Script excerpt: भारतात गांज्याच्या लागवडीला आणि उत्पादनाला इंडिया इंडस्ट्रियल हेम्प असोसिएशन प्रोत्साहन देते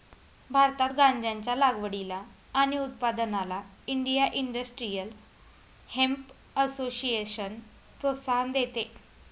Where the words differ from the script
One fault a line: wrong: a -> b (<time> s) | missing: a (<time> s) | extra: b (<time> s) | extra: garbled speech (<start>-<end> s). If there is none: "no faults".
no faults